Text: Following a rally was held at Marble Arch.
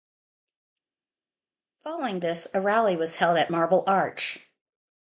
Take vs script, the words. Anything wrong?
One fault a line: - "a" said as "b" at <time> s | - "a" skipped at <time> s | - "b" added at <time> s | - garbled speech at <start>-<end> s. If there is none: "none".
- "this" added at 2.2 s